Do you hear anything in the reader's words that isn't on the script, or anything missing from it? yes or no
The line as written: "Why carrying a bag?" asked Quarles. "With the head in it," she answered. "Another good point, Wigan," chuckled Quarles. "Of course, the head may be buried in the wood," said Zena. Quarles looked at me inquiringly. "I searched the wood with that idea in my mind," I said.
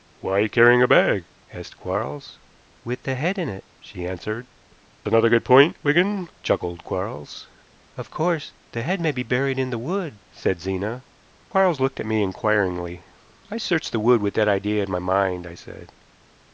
no